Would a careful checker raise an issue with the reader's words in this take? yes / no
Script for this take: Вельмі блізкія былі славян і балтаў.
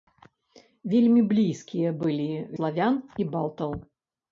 no